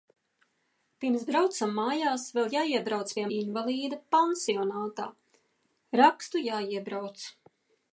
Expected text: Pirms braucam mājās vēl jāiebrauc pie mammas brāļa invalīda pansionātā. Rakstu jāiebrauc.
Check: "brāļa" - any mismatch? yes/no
yes